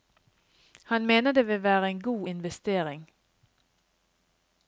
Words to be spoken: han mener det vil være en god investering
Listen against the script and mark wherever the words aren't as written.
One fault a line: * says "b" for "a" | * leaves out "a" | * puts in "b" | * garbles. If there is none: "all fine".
all fine